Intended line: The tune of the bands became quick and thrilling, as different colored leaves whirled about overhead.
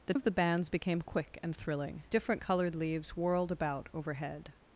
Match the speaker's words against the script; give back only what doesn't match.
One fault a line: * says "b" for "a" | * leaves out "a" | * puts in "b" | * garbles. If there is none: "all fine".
* leaves out "tune"
* leaves out "as"